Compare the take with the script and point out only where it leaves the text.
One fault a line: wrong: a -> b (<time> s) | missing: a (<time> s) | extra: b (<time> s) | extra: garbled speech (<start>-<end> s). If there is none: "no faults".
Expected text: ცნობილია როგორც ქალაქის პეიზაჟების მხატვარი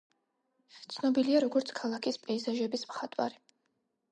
no faults